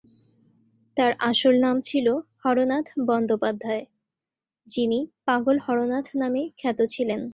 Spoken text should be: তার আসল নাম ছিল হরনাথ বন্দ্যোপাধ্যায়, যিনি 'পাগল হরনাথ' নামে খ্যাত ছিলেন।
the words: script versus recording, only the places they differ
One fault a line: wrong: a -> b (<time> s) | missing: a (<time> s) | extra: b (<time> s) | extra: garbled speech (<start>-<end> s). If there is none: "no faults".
no faults